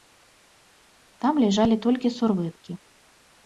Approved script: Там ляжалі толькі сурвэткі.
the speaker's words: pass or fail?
pass